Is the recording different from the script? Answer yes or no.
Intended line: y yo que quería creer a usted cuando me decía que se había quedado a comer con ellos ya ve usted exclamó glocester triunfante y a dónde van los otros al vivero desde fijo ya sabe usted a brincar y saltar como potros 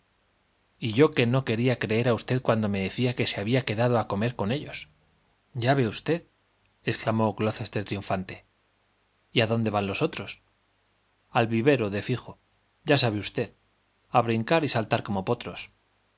yes